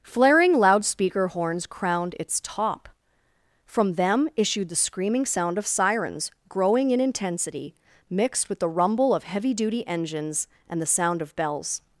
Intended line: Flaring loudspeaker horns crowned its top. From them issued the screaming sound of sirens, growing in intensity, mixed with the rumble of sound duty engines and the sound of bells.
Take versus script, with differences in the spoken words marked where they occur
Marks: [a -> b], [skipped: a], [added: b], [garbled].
Flaring loudspeaker horns crowned its top. From them issued the screaming sound of sirens, growing in intensity, mixed with the rumble of [sound -> heavy] duty engines and the sound of bells.